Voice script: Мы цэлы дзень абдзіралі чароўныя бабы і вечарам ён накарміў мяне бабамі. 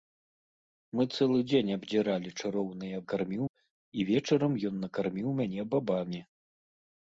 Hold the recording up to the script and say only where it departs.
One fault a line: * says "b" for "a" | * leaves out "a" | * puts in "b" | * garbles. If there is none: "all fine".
* says "накарміў" for "бабы"